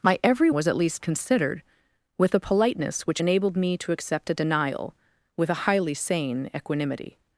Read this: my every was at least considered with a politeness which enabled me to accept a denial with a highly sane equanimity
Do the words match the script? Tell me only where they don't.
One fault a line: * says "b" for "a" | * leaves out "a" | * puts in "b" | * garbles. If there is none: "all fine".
all fine